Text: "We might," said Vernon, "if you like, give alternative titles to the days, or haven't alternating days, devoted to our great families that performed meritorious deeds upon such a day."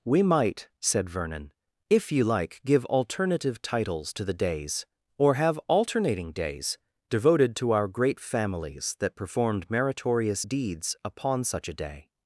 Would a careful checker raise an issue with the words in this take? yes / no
yes